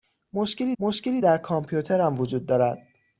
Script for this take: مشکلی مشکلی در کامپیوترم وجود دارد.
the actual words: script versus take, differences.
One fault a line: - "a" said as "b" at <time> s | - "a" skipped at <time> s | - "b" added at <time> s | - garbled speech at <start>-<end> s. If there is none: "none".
none